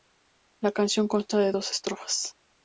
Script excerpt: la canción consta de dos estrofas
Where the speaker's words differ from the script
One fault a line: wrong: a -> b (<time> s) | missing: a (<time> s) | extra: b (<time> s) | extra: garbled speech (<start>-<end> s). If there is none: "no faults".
no faults